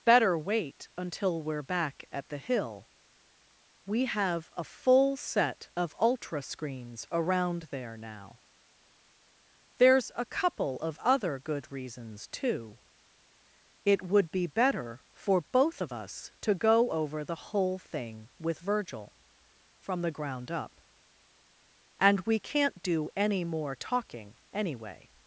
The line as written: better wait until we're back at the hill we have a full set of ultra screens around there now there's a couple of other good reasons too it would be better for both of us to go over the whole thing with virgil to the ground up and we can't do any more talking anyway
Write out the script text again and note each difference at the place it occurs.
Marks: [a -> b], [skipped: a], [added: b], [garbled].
better wait until we're back at the hill we have a full set of ultra screens around there now there's a couple of other good reasons too it would be better for both of us to go over the whole thing with virgil [to -> from] the ground up and we can't do any more talking anyway